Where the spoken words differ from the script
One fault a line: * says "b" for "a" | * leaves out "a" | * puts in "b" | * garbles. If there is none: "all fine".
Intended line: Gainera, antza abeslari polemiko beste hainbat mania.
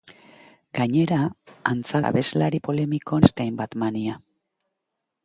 all fine